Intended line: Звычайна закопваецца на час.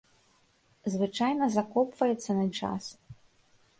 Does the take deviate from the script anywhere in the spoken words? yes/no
no